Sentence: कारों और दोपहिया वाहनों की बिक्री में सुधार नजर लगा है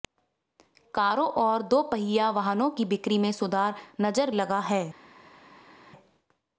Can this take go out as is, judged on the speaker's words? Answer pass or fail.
pass